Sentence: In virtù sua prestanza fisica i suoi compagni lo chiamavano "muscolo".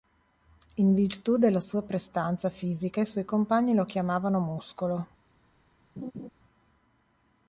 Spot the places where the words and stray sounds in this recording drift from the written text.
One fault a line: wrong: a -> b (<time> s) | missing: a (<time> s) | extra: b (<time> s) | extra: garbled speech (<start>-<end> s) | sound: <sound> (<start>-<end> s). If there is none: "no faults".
extra: della (1.4 s)
sound: laugh (6.0-6.3 s)